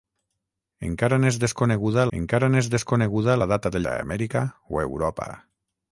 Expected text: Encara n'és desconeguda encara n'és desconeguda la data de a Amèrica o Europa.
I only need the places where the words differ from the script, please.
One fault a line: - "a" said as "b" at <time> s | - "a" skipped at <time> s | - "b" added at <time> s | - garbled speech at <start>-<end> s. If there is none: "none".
none